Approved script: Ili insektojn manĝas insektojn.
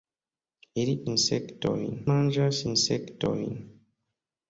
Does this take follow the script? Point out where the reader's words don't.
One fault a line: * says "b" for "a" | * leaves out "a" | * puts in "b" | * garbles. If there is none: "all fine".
all fine